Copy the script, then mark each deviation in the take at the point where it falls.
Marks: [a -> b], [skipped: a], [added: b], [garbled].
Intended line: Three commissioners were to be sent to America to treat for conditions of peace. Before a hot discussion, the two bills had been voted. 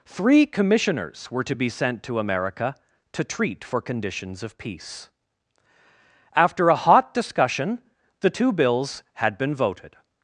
Three commissioners were to be sent to America to treat for conditions of peace. [Before -> After] a hot discussion, the two bills had been voted.